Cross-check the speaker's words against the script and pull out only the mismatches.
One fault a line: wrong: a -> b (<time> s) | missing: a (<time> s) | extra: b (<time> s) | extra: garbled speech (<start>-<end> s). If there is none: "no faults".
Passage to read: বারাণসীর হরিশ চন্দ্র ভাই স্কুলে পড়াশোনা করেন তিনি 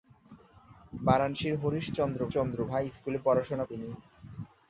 extra: চন্দ্র (2.3 s)
missing: করেন (3.7 s)